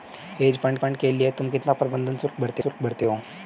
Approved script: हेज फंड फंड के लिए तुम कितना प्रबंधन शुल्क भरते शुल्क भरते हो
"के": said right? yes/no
yes